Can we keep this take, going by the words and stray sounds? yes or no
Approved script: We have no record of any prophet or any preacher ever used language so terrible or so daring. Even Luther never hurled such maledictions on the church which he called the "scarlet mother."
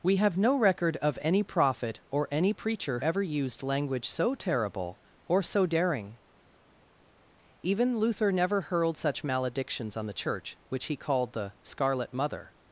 yes